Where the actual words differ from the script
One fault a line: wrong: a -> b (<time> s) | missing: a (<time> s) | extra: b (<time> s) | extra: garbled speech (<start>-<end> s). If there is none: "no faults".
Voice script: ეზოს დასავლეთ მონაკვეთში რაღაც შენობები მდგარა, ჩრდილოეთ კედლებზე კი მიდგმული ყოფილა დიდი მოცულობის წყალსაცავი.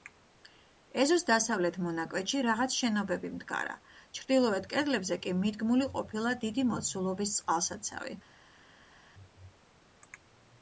no faults